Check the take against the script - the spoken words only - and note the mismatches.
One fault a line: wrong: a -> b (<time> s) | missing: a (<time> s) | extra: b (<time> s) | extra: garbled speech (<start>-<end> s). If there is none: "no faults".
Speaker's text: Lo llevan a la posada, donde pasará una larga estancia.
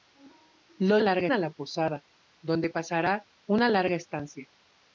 wrong: llevan -> larga (1.0 s)